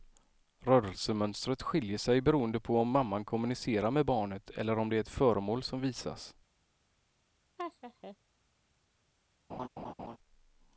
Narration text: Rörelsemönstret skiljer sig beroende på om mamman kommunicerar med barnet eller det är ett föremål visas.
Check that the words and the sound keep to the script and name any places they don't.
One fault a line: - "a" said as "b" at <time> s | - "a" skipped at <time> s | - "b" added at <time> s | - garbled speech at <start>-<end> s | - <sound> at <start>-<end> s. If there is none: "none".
- "om" added at 4.8 s
- "som" added at 5.6 s
- laugh at 7.6-8.2 s
- laugh at 9.5-10.2 s